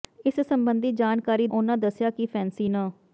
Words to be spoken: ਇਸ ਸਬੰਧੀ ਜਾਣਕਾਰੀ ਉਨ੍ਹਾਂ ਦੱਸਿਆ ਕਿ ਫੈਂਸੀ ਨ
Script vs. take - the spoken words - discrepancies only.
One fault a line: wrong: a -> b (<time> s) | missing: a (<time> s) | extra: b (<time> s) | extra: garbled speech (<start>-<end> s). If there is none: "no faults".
no faults